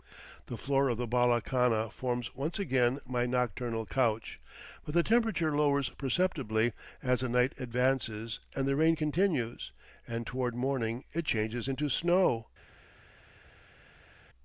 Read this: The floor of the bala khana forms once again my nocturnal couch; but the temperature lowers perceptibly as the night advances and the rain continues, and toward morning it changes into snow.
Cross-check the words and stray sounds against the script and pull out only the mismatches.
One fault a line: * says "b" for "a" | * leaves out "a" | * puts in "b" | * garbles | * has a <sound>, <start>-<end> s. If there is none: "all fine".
all fine